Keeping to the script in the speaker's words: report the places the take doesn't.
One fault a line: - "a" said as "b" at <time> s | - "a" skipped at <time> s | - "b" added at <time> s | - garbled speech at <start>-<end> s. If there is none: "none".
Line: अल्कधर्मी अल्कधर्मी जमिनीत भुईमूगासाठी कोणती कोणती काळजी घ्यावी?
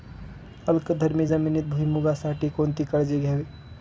- "अल्कधर्मी" skipped at 1.3 s
- "कोणती" skipped at 2.8 s